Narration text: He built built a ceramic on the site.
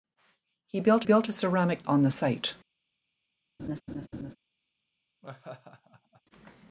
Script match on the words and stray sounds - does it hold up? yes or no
no